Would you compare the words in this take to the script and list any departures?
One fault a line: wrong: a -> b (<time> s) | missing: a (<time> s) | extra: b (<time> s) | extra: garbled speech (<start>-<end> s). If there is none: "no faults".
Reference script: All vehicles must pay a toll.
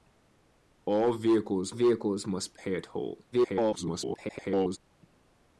extra: vehicles (1.7 s)
extra: garbled speech (3.3-4.8 s)